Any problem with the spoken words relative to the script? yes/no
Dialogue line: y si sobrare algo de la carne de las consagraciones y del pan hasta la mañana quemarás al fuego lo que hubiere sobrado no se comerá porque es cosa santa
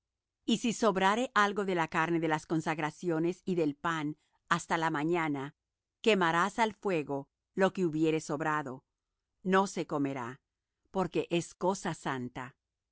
no